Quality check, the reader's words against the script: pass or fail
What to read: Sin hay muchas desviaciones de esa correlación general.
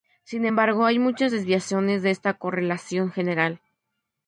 fail